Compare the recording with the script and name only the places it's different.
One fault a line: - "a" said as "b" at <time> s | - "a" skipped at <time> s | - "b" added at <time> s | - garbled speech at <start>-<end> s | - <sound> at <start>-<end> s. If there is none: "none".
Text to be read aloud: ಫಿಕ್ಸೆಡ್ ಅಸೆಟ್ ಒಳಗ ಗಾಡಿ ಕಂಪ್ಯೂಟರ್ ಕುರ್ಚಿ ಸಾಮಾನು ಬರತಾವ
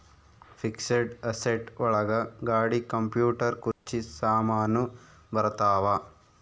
- dropout at 3.7-3.9 s